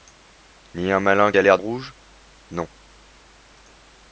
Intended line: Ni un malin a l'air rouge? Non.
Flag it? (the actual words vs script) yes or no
no